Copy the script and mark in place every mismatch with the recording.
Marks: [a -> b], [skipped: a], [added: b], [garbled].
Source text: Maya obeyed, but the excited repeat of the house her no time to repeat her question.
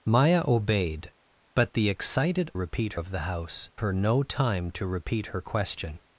Maya obeyed, but the excited repeat of the house her no time to repeat her question.